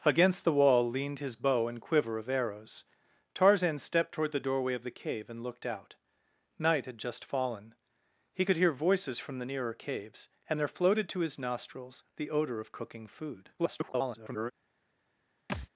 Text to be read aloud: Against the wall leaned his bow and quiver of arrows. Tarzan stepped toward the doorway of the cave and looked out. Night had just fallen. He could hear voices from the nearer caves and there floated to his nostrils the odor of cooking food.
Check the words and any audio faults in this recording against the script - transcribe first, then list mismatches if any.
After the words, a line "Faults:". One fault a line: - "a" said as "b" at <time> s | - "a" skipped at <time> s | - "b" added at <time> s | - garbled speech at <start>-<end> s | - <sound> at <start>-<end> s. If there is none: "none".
Against the wall leaned his bow and quiver of arrows. Tarzan stepped toward the doorway of the cave and looked out. Night had just fallen. He could hear voices from the nearer caves and there floated to his nostrils the odor of cooking food. [garbled]
Faults:
- garbled speech at 13.6-14.5 s
- thud at 15.5-15.7 s